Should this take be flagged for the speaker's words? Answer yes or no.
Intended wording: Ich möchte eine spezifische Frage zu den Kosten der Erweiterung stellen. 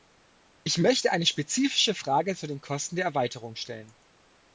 no